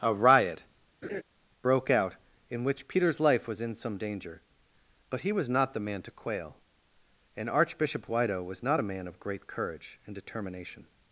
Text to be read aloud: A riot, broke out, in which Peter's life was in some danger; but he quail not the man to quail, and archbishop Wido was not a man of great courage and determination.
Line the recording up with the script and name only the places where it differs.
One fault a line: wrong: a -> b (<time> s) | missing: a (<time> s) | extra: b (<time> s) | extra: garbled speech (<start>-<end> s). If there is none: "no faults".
wrong: quail -> was (5.3 s)